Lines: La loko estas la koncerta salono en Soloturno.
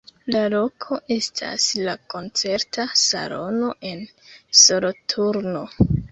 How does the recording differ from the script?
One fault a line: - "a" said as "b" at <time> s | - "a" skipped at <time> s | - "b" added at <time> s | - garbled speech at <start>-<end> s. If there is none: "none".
none